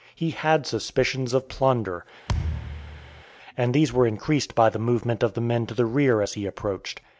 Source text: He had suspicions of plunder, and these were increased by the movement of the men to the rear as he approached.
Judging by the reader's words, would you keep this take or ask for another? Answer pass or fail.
pass